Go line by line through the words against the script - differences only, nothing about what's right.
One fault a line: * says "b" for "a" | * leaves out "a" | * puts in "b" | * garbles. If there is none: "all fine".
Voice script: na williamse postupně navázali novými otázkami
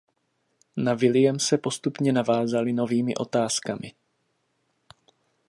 all fine